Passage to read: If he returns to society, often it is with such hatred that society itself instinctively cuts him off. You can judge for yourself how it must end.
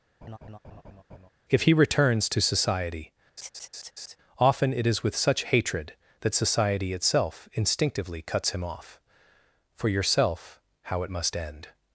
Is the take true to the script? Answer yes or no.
no